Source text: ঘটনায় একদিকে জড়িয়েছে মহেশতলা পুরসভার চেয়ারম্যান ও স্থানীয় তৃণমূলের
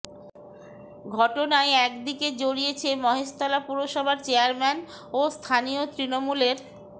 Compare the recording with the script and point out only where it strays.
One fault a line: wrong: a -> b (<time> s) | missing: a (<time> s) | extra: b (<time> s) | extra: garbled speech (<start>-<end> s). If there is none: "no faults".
no faults